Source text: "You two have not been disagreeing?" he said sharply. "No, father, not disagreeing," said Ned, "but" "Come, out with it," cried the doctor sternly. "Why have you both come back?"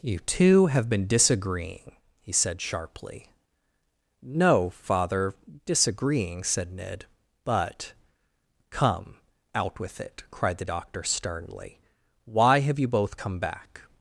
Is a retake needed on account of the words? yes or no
yes